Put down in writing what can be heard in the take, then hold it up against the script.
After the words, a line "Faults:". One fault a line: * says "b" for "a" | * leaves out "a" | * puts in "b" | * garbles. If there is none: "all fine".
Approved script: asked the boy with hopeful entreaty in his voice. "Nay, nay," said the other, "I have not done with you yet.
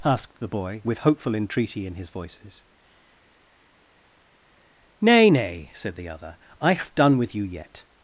asked the boy with hopeful entreaty in his voices. "Nay, nay," said the other, "I have done with you yet.
Faults:
* says "voices" for "voice"
* leaves out "not"